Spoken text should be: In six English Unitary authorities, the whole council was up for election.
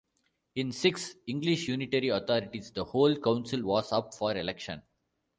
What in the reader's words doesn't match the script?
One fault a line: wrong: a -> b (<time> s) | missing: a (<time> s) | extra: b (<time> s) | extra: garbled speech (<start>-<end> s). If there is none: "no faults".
no faults